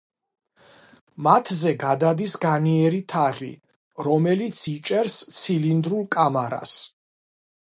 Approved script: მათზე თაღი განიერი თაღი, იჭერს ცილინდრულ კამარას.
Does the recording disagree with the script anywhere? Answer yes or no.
yes